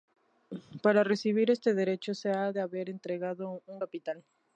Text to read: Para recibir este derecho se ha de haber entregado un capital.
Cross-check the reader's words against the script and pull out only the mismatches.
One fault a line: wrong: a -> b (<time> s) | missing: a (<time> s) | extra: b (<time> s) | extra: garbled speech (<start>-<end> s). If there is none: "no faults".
no faults